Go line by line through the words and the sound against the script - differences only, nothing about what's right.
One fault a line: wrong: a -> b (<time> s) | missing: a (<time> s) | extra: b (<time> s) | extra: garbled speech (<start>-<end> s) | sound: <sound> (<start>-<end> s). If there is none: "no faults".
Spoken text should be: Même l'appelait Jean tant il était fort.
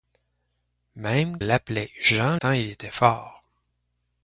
no faults